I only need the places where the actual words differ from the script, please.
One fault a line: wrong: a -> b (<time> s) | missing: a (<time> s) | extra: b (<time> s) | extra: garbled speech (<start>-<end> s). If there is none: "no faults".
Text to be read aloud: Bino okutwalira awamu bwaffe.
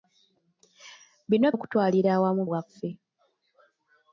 no faults